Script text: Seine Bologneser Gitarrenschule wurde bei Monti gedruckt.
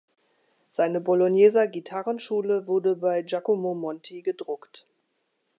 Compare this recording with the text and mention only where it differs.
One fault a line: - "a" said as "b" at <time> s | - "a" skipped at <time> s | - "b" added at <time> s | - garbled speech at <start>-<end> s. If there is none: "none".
- "Giacomo" added at 3.2 s